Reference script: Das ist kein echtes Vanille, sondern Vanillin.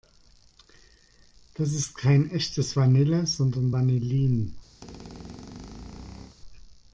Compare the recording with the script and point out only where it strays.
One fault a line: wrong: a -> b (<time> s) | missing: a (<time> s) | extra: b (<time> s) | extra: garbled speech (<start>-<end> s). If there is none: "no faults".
no faults